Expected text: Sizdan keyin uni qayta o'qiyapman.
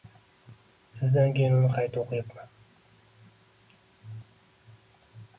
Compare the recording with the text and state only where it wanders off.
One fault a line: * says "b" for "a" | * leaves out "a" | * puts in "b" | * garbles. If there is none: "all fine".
all fine